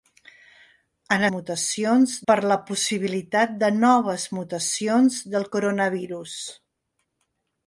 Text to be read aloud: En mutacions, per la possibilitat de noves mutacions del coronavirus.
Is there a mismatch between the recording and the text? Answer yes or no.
no